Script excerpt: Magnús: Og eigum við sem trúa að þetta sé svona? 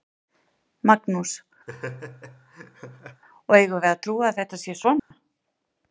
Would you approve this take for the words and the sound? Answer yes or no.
no